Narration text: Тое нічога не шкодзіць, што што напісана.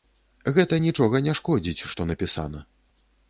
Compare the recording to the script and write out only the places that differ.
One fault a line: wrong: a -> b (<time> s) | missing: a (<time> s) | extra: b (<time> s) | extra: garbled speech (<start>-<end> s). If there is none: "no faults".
wrong: Тое -> Гэта (0.6 s)
missing: што (2.1 s)